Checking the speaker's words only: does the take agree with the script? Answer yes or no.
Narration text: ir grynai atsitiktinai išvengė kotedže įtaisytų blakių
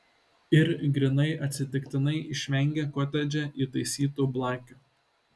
yes